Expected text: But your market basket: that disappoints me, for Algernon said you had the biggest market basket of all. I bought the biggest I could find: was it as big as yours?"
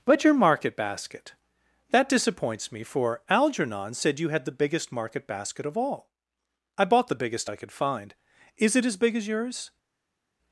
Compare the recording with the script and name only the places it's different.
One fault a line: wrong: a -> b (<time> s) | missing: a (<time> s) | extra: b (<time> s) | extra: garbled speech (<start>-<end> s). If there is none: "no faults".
wrong: was -> is (8.6 s)